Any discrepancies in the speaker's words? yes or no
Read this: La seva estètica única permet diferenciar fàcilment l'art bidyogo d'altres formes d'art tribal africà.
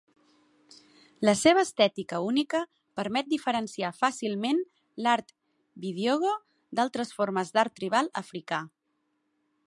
no